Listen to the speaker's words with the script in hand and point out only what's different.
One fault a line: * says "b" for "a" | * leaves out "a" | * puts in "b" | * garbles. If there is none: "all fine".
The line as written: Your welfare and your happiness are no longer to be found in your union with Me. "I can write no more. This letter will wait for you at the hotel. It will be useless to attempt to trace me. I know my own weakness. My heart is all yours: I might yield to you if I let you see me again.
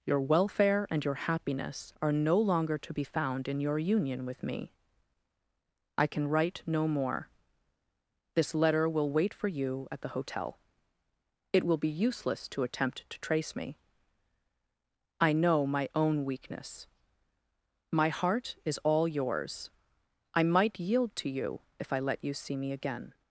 all fine